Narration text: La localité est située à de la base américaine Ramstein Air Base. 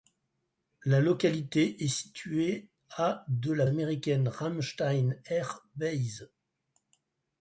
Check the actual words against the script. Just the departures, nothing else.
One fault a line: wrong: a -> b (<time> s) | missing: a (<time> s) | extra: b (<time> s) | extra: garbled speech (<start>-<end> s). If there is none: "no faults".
missing: base (3.7 s)